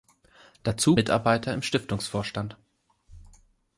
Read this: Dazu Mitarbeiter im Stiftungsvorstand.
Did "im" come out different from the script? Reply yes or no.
no